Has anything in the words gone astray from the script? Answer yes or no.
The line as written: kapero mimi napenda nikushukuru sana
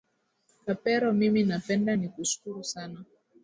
no